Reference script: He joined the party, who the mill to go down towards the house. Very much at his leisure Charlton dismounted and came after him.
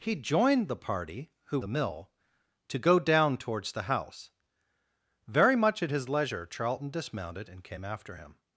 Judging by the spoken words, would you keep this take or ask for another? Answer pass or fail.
pass